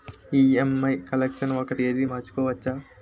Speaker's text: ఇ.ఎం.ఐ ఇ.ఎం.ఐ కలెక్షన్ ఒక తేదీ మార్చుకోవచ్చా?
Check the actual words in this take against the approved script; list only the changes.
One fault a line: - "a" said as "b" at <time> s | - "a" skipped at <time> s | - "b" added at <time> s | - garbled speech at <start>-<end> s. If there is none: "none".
- "ఇ.ఎం.ఐ" skipped at 0.9 s